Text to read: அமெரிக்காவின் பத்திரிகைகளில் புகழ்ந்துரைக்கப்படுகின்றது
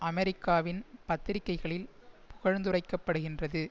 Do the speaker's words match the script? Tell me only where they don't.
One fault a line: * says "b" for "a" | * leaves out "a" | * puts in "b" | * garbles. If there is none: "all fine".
all fine